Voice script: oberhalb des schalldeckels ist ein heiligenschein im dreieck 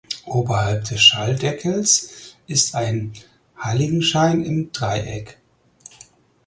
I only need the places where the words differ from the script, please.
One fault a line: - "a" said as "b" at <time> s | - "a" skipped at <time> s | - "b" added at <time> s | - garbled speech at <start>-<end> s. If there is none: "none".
none